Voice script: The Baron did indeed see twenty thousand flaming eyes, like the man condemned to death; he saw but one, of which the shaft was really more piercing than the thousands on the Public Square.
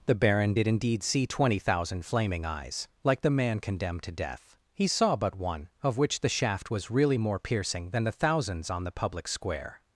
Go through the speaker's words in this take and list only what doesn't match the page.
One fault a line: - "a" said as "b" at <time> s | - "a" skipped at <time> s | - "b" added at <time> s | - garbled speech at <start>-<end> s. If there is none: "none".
none